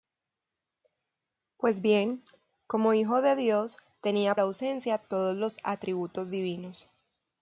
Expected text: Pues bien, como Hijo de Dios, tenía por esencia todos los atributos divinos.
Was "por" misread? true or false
true